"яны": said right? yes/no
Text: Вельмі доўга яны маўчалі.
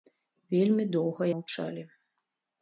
no